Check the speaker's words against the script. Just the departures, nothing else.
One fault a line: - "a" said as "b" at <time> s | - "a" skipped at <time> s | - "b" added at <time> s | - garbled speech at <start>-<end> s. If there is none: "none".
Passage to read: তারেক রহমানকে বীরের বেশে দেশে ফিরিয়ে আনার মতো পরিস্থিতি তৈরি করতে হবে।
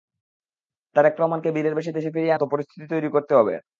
- "আনার" skipped at 2.4 s